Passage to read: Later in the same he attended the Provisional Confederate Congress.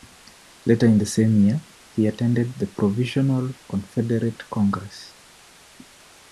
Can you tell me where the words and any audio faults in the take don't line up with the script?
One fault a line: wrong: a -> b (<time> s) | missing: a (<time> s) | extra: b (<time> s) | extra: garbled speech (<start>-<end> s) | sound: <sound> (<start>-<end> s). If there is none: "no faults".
extra: year (1.4 s)